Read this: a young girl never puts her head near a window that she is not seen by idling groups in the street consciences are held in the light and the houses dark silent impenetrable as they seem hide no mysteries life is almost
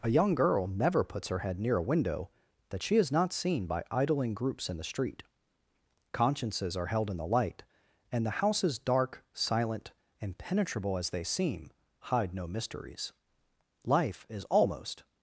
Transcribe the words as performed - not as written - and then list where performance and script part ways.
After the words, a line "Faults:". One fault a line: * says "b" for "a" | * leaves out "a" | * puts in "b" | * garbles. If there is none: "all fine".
a young girl never puts her head near a window that she is not seen by idling groups in the street consciences are held in the light and the houses dark silent impenetrable as they seem hide no mysteries life is almost
Faults:
all fine